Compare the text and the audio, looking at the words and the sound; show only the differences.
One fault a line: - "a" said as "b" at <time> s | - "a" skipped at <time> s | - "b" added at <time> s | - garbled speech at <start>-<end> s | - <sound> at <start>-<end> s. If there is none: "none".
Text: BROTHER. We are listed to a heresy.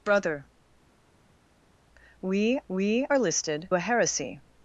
- "we" added at 2.7 s
- "to" skipped at 3.7 s